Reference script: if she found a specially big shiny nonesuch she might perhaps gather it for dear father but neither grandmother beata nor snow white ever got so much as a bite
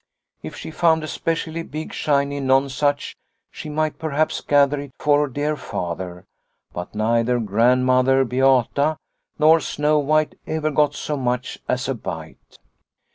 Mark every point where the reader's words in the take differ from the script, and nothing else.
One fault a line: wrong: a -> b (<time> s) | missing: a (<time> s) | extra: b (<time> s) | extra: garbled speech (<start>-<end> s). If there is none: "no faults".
no faults